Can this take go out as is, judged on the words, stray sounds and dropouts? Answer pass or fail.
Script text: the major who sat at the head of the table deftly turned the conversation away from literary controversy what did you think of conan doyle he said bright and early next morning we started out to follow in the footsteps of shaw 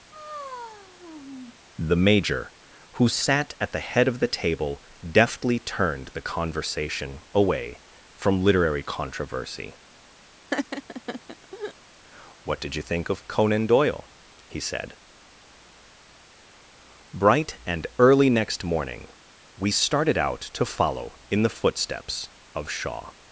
fail